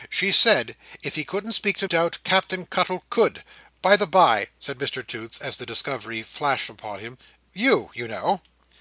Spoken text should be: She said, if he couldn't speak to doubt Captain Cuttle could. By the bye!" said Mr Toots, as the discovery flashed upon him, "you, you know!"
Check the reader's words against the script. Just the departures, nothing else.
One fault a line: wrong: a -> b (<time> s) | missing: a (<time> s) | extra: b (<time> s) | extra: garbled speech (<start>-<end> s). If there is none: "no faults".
no faults